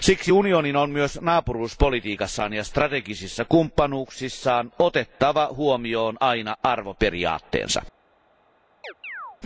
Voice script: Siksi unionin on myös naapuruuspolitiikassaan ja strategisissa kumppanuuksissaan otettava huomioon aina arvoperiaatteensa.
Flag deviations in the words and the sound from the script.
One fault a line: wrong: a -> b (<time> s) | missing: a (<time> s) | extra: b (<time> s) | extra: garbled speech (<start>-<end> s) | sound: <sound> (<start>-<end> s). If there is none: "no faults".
sound: chirp (8.8-9.4 s)